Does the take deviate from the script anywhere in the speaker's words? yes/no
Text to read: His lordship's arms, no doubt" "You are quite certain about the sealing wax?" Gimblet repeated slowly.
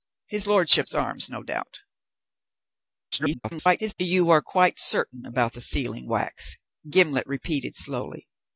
yes